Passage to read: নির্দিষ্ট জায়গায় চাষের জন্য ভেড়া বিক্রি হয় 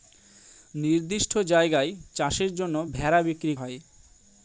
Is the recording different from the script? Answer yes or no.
no